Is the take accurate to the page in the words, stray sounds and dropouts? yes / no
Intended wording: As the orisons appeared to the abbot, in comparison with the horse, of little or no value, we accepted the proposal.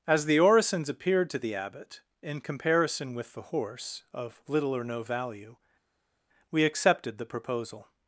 yes